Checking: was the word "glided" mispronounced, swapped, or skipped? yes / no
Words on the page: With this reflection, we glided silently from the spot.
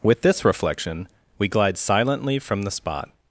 yes